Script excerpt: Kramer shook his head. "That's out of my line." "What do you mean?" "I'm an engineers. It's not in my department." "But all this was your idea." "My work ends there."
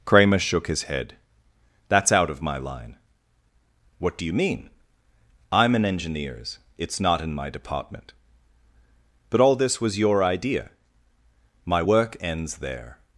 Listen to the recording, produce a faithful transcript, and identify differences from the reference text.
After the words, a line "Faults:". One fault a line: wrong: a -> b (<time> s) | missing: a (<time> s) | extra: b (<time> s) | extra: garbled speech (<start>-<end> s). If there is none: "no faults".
Kramer shook his head. "That's out of my line." "What do you mean?" "I'm an engineers. It's not in my department." "But all this was your idea." "My work ends there."
Faults:
no faults